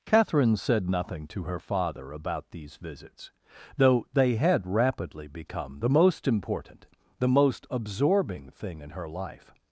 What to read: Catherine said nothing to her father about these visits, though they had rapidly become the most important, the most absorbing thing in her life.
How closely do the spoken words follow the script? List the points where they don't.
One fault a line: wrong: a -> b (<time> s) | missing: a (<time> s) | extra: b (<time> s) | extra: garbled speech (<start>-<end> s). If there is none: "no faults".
no faults